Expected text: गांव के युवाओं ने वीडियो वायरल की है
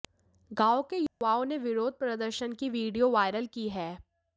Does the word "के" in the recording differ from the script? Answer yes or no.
no